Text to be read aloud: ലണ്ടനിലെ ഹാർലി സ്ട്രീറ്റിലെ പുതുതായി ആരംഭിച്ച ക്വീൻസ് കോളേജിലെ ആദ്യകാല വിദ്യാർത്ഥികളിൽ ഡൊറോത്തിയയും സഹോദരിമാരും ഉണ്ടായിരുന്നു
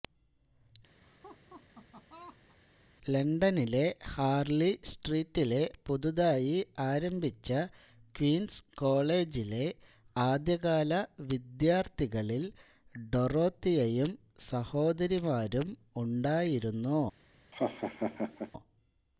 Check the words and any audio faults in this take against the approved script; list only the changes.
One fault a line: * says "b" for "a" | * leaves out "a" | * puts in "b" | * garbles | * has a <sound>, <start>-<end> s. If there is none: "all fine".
* has a laugh, 1.0-2.6 s
* has a laugh, 17.5-18.5 s